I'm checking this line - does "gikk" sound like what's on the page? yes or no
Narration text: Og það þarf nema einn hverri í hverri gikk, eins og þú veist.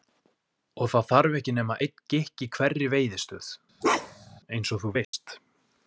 no